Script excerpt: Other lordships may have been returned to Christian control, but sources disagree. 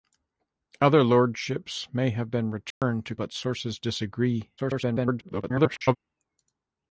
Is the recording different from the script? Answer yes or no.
yes